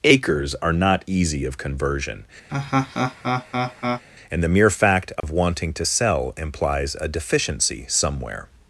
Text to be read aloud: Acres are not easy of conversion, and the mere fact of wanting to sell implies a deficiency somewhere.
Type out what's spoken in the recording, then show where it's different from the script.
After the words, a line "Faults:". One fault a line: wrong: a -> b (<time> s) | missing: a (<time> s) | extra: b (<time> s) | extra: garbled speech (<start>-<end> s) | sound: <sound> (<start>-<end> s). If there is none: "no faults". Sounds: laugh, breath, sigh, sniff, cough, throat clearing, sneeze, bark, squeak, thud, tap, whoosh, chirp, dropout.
Acres are not easy of conversion, and the mere fact of wanting to sell implies a deficiency somewhere.
Faults:
sound: laugh (2.5-4.0 s)
sound: dropout (5.2-5.2 s)